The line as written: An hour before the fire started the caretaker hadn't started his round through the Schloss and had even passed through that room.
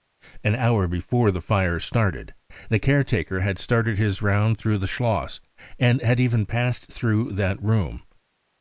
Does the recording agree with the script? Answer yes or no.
no